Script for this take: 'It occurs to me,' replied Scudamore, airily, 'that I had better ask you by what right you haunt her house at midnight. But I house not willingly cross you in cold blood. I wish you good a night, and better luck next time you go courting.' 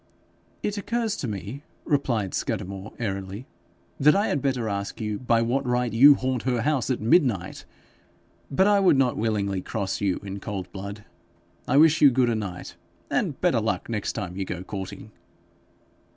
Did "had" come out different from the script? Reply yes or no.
no